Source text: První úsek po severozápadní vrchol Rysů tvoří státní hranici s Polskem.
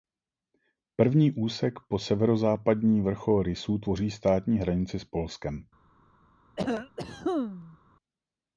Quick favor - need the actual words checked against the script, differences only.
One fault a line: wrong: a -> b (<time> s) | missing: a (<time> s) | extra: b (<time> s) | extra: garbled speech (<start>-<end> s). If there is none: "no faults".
no faults